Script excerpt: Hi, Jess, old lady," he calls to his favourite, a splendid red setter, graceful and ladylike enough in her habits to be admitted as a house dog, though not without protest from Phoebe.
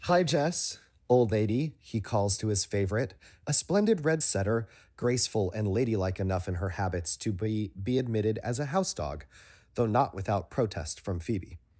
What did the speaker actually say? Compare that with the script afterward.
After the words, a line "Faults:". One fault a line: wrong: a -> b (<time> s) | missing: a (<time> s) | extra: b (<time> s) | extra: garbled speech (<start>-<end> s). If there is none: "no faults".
Hi, Jess, old lady," he calls to his favourite, a splendid red setter, graceful and ladylike enough in her habits to be be admitted as a house dog, though not without protest from Phoebe.
Faults:
extra: be (7.7 s)